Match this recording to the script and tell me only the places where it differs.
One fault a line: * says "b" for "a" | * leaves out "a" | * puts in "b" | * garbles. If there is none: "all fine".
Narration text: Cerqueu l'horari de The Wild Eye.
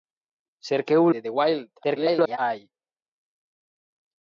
* leaves out "l'horari"
* garbles